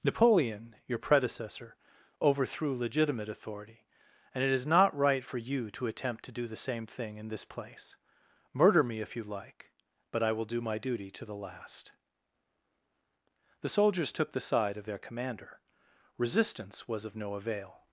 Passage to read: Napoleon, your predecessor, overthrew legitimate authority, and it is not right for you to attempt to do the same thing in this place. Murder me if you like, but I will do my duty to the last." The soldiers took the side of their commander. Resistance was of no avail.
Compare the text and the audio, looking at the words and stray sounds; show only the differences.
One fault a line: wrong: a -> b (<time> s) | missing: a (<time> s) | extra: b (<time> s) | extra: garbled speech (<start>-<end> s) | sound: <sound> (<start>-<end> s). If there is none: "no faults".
no faults